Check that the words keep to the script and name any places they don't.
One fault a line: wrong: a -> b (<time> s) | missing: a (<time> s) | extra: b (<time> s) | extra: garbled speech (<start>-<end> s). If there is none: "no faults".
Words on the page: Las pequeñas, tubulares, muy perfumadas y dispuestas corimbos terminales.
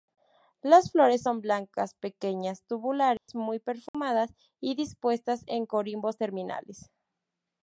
extra: flores son blancas (0.9 s)
extra: en (5.5 s)